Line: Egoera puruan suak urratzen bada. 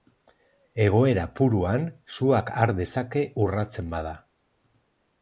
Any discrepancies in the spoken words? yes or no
yes